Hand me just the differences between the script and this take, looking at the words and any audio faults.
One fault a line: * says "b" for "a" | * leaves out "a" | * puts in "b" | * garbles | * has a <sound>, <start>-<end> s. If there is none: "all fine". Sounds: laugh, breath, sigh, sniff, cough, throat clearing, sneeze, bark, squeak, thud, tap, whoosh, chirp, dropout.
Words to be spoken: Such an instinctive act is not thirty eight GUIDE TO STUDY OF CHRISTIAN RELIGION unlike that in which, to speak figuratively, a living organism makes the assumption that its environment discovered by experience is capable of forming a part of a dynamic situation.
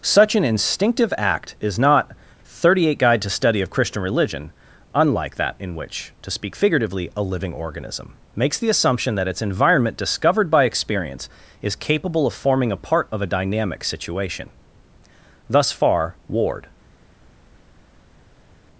* puts in "Thus far Ward"